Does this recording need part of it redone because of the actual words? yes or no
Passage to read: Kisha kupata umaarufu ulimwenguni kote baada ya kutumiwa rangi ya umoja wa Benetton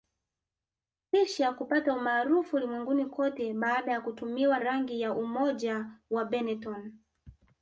no